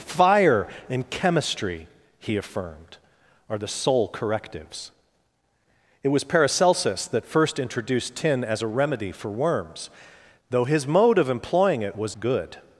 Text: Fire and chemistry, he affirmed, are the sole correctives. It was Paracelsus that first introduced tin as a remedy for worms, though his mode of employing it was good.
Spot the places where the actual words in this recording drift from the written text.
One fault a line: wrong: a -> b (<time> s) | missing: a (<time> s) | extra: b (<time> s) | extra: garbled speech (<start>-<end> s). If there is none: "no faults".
no faults